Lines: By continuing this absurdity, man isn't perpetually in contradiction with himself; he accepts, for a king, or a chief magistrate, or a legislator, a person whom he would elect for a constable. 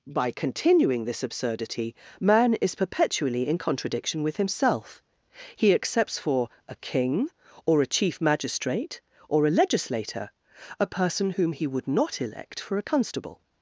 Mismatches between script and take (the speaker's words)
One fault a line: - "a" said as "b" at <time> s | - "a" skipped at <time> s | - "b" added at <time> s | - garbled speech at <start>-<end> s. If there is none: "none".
- "isn't" said as "is" at 2.5 s
- "not" added at 11.9 s